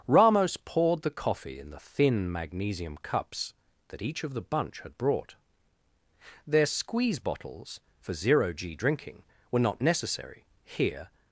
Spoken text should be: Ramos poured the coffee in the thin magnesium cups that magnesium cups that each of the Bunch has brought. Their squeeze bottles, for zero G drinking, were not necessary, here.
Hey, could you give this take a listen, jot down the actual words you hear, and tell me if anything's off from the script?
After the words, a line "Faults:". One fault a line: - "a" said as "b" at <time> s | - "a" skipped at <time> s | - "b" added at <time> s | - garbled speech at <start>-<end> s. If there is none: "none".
Ramos poured the coffee in the thin magnesium cups that each of the Bunch had brought. Their squeeze bottles, for zero G drinking, were not necessary, here.
Faults:
- "magnesium cups that" skipped at 4.0 s
- "has" said as "had" at 4.8 s